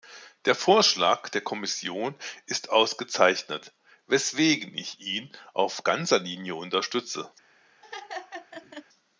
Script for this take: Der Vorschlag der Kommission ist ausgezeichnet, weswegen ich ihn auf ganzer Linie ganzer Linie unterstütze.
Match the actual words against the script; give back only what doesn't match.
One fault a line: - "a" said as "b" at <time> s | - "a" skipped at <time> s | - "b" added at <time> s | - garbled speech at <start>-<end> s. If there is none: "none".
- "ganzer Linie" skipped at 6.5 s